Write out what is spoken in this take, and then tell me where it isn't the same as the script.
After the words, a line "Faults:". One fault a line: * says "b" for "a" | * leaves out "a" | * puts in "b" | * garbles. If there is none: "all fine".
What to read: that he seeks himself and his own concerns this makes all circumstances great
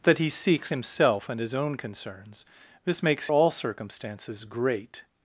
that he seeks himself and his own concerns this makes all circumstances great
Faults:
all fine